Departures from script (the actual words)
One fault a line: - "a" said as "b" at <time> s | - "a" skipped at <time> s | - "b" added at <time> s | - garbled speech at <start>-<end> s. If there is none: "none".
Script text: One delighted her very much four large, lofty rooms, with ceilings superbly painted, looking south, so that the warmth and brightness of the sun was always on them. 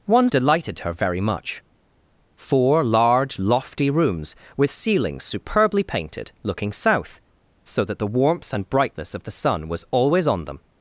none